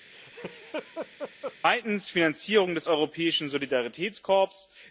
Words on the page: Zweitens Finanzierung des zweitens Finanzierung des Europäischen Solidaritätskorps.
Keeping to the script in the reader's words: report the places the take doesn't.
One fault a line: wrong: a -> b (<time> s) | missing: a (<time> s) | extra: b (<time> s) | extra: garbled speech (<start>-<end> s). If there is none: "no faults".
missing: zweitens Finanzierung des (2.9 s)